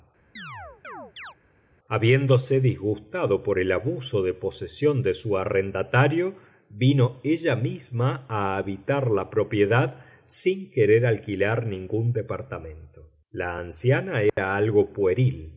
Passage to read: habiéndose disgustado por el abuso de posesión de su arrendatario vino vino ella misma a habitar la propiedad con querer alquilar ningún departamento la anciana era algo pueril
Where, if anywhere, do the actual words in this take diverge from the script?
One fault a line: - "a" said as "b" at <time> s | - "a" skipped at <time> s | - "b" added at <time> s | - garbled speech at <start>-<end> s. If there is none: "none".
- "vino" skipped at 7.2 s
- "con" said as "sin" at 10.2 s